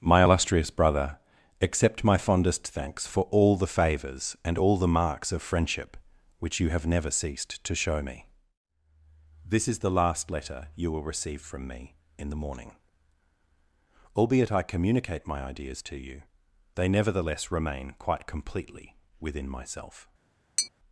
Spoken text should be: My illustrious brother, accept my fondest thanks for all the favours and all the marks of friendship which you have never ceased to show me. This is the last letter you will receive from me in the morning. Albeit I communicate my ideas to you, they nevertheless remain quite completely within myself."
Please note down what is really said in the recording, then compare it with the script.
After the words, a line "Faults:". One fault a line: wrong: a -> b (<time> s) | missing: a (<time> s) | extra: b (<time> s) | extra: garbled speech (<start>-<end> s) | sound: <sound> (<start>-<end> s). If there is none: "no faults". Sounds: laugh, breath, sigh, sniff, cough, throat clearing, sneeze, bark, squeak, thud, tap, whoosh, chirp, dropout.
My illustrious brother, accept my fondest thanks for all the favours and all the marks of friendship which you have never ceased to show me. This is the last letter you will receive from me in the morning. Albeit I communicate my ideas to you, they nevertheless remain quite completely within myself."
Faults:
sound: tap (20.6-20.7 s)